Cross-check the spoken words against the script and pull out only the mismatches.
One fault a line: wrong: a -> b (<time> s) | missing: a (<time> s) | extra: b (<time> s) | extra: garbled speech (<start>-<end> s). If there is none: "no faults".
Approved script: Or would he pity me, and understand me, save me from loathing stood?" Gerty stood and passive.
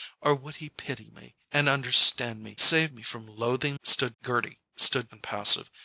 no faults